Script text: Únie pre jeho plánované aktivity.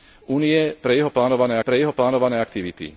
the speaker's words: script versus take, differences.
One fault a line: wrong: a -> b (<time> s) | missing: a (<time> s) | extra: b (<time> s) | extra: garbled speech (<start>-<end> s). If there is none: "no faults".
extra: pre jeho plánované (1.6 s)